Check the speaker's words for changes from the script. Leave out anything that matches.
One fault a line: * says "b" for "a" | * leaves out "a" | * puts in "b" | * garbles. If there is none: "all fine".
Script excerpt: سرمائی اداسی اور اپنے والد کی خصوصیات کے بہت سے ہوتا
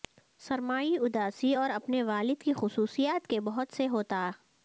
all fine